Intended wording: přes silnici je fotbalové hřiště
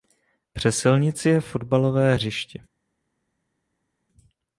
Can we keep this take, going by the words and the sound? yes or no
yes